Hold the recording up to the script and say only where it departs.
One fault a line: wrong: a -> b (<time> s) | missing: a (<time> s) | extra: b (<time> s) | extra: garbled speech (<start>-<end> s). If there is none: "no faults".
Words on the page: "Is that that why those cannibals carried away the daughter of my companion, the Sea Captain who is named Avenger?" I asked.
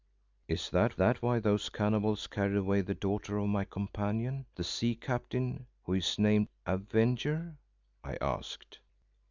no faults